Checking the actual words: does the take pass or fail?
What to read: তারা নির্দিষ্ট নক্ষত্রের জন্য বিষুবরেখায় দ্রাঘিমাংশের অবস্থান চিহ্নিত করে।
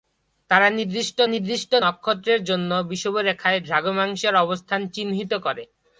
fail